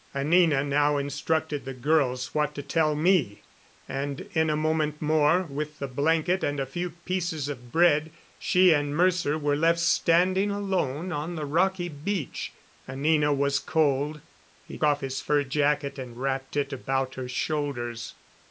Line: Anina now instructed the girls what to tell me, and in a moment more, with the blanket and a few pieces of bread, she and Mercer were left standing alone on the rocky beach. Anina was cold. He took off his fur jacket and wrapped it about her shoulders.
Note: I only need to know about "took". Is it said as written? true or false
false